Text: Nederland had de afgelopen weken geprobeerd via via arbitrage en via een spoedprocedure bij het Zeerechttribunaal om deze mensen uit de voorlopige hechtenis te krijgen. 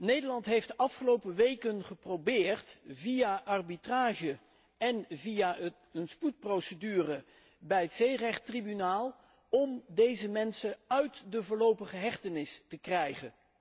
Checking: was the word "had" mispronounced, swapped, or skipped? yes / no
yes